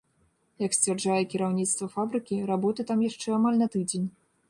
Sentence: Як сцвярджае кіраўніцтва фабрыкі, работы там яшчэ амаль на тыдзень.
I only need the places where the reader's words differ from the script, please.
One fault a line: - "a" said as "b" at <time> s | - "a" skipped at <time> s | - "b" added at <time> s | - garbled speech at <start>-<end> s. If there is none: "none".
none